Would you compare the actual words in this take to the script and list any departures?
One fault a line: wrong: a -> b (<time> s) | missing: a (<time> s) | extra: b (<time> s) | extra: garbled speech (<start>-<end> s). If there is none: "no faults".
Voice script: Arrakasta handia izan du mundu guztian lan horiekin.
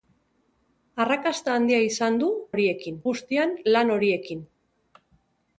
wrong: mundu -> horiekin (2.5 s)